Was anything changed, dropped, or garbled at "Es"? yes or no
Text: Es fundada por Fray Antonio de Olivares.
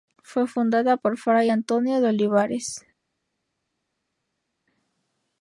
yes